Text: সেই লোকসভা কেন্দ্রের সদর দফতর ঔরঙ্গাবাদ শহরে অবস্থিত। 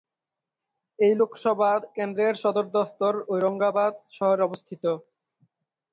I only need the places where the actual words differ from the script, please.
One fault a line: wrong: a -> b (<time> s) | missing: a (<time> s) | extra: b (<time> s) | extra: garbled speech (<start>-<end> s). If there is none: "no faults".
wrong: সেই -> এই (1.0 s)